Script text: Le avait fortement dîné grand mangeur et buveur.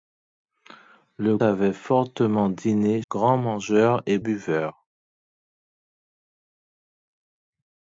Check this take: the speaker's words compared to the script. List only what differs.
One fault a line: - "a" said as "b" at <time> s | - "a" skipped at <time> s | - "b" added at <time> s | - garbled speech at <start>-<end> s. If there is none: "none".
none